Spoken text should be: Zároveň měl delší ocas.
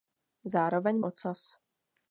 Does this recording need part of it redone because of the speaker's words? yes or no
yes